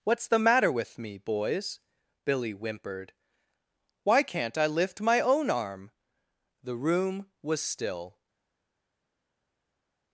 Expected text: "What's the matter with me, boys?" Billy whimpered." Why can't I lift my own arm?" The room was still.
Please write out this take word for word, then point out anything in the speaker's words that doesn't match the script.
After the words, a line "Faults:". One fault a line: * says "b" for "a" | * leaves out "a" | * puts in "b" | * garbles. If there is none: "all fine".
"What's the matter with me, boys?" Billy whimpered." Why can't I lift my own arm?" The room was still.
Faults:
all fine